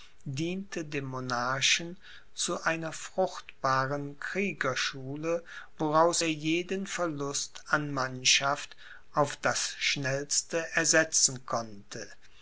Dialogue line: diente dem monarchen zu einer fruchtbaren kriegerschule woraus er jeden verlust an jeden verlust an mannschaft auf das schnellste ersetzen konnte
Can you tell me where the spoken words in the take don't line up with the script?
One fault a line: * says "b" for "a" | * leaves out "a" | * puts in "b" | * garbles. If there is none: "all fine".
* leaves out "jeden verlust an"